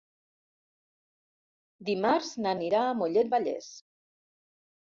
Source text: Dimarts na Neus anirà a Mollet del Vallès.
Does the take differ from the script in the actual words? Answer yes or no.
yes